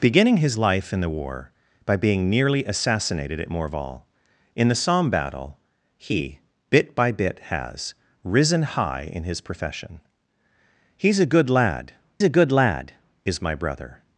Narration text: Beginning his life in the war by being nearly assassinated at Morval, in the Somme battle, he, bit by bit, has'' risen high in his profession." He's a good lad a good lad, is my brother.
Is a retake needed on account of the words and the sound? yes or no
no